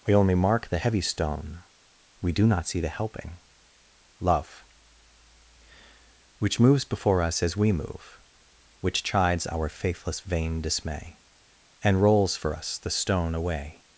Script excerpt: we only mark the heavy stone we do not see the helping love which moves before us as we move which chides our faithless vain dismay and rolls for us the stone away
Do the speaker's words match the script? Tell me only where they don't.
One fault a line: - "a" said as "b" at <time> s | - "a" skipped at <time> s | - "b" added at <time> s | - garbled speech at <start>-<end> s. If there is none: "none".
none